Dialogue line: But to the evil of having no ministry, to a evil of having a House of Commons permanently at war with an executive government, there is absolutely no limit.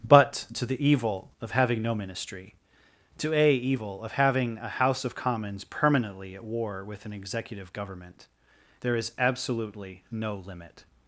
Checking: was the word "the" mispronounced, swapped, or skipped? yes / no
no